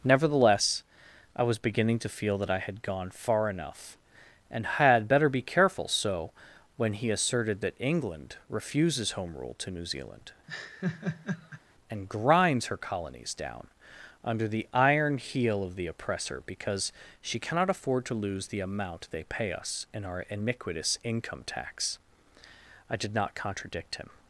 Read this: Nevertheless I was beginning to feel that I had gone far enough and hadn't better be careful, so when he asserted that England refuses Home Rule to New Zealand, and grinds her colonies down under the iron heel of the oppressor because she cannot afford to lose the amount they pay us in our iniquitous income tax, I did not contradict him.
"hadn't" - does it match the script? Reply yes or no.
no